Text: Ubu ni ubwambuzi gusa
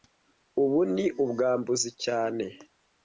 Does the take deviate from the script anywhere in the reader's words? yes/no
yes